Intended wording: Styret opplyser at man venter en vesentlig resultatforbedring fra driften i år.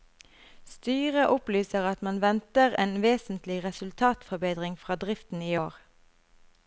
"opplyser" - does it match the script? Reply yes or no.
yes